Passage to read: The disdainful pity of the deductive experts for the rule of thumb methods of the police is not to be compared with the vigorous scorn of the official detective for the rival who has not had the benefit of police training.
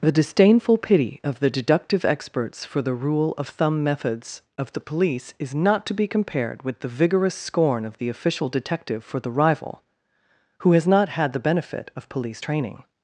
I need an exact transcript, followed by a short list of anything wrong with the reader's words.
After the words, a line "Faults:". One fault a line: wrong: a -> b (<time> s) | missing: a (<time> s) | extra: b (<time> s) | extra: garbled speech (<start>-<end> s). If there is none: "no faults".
The disdainful pity of the deductive experts for the rule of thumb methods of the police is not to be compared with the vigorous scorn of the official detective for the rival who has not had the benefit of police training.
Faults:
no faults